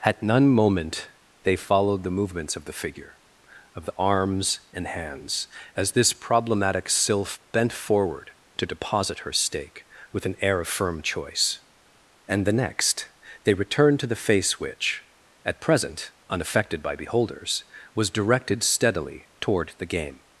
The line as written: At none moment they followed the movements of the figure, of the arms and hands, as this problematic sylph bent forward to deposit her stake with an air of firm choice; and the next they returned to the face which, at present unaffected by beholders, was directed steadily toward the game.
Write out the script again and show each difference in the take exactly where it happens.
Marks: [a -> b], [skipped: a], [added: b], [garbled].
At none moment they followed the movements of the figure, of the arms and hands, as this problematic sylph bent forward to deposit her stake with an air of firm choice; and the next they returned to the face which, at present unaffected by beholders, was directed steadily toward the game.